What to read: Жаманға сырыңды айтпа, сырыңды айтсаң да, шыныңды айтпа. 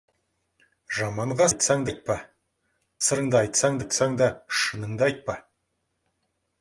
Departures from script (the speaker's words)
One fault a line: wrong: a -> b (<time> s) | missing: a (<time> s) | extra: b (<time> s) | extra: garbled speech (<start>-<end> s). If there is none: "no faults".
wrong: сырыңды -> айтсаң (1.5 s)
extra: айтсаң (3.8 s)